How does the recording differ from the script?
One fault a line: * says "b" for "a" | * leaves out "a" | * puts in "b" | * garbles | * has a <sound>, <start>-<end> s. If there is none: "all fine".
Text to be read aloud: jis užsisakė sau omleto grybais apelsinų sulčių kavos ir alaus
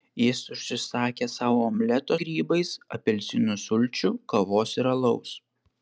all fine